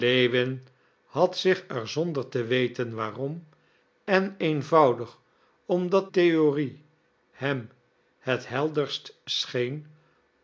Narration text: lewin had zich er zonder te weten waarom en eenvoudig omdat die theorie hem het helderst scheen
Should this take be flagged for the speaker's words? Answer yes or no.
yes